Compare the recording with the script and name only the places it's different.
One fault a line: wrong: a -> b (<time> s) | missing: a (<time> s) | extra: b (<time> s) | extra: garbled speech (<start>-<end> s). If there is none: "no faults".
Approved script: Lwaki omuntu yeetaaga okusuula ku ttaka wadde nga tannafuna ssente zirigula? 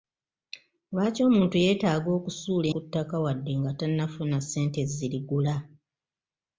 no faults